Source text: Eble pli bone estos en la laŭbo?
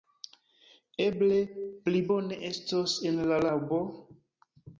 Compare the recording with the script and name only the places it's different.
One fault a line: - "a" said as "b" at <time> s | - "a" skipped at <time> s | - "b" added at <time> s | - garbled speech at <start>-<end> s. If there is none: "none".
none